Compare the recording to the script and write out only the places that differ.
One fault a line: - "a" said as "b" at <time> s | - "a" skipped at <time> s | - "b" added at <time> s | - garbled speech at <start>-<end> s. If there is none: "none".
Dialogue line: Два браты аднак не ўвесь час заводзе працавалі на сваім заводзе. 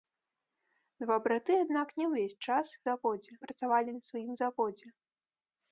none